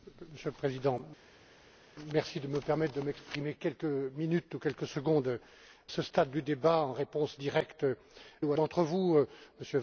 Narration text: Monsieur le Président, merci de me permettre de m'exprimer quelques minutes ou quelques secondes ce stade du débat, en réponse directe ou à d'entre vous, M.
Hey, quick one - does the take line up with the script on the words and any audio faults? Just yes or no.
yes